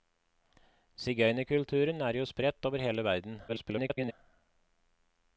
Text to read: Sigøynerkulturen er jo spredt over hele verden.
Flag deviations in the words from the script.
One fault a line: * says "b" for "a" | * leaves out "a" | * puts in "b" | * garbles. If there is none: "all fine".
* garbles